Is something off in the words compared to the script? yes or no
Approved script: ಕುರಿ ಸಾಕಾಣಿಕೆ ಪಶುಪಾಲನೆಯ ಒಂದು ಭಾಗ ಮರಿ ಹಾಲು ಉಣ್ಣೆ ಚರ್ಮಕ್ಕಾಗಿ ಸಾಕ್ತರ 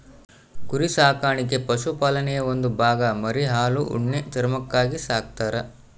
no